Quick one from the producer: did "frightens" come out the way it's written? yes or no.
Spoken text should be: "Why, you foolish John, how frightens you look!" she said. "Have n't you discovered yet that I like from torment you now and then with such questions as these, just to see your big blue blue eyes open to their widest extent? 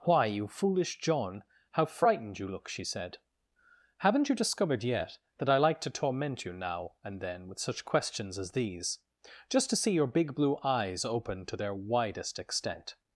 no